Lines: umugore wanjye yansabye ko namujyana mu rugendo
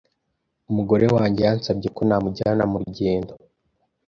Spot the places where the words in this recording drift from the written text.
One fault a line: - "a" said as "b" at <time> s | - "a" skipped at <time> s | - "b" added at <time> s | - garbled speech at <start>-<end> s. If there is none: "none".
none